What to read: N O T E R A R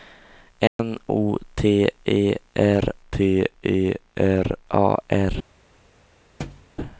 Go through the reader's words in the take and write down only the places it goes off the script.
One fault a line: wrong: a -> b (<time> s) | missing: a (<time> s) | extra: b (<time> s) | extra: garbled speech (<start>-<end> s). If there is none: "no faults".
extra: T E R (3.1 s)